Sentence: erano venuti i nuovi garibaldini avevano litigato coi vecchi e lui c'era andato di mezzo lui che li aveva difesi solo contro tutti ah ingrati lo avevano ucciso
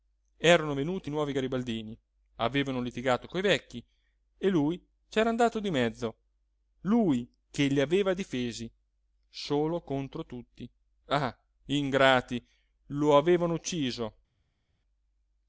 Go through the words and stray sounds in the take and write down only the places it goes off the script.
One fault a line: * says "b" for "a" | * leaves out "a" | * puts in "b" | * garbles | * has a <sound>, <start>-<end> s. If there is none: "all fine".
all fine